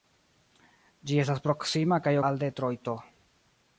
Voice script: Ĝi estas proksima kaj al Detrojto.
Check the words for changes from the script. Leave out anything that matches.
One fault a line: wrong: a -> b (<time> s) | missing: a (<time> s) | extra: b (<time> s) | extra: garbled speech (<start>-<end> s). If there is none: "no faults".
no faults